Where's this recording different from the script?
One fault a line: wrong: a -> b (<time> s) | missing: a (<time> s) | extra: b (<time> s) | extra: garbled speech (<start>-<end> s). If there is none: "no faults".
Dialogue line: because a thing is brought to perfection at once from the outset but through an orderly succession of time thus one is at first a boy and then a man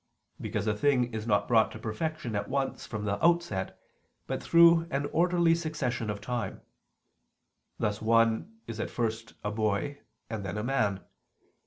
extra: not (1.3 s)